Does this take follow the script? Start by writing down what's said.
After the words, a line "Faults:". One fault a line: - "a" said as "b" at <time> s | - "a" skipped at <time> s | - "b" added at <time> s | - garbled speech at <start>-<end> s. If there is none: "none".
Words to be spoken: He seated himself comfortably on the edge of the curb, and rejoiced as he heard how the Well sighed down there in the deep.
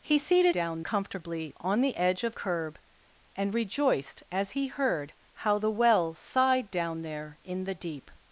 He seated down comfortably on the edge of curb, and rejoiced as he heard how the Well sighed down there in the deep.
Faults:
- "himself" said as "down" at 0.5 s
- "the" skipped at 2.3 s